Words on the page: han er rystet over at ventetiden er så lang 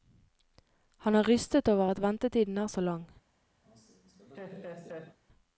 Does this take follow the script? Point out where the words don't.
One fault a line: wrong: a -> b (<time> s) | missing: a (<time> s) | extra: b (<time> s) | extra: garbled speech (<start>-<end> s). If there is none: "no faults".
no faults